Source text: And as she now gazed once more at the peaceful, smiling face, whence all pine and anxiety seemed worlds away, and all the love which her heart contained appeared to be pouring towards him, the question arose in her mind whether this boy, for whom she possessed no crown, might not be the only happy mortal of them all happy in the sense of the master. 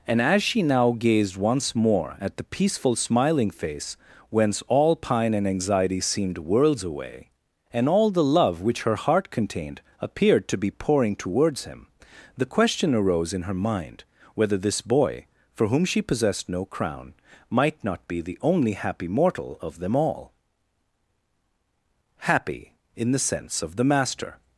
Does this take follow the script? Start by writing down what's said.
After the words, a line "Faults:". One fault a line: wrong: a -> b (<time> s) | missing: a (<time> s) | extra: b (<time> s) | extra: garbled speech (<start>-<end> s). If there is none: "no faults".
And as she now gazed once more at the peaceful, smiling face, whence all pine and anxiety seemed worlds away, and all the love which her heart contained appeared to be pouring towards him, the question arose in her mind whether this boy, for whom she possessed no crown, might not be the only happy mortal of them all happy in the sense of the master.
Faults:
no faults